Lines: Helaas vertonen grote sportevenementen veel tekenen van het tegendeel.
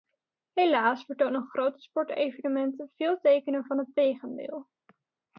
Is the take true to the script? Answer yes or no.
yes